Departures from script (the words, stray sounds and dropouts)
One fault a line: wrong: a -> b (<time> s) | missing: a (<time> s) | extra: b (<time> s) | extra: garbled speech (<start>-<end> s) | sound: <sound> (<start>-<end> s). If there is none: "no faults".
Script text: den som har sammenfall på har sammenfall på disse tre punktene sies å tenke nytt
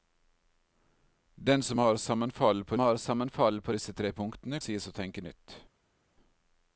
no faults